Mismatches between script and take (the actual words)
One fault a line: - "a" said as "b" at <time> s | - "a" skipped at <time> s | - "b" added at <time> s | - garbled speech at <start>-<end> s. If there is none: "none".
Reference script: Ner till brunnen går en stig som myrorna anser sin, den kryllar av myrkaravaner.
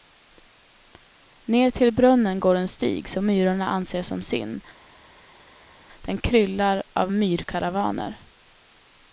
- "som" added at 4.0 s